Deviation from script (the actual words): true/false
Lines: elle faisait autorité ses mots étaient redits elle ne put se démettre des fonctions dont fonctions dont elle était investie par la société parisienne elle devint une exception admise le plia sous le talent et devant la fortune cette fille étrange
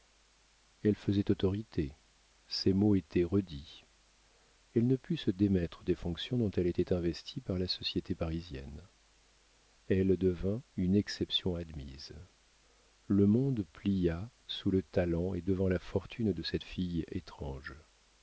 true